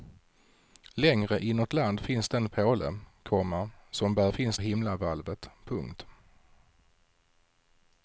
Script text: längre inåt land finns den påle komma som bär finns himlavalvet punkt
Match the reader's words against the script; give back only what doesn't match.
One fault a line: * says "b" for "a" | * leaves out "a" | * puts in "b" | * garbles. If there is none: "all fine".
all fine